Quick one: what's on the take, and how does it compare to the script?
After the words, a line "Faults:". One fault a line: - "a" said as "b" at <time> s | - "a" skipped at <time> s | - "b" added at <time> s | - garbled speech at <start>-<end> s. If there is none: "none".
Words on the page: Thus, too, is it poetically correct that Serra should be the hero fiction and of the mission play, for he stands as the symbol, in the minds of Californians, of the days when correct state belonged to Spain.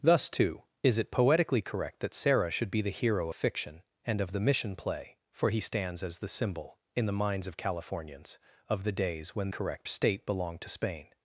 Thus, too, is it poetically correct that Serra should be the hero fiction and of the mission play, for he stands as the symbol, in the minds of Californians, of the days when correct state belonged to Spain.
Faults:
none